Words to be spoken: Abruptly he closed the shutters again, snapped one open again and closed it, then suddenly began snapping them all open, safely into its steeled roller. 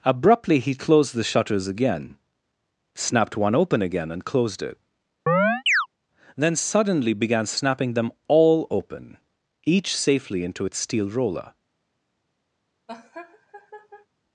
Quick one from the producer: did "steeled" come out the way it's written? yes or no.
no